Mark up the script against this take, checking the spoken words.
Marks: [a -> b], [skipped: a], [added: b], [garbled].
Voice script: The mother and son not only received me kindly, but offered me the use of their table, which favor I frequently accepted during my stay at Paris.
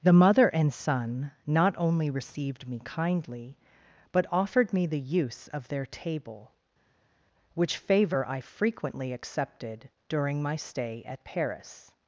The mother and son not only received me kindly, but offered me the use of their table, which favor I frequently accepted during my stay at Paris.